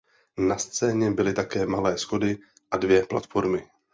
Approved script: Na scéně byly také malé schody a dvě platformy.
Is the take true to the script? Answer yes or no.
yes